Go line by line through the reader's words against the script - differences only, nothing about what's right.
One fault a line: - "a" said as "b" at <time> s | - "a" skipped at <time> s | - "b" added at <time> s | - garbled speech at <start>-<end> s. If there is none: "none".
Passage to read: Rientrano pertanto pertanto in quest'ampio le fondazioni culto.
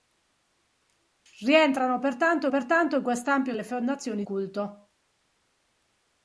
none